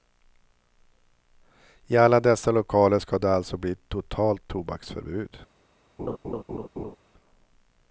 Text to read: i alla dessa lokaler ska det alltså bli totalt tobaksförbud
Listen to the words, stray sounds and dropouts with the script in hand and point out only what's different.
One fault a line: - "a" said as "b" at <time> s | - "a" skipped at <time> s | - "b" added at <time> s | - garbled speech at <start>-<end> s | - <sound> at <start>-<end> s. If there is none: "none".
- laugh at 6.0-7.0 s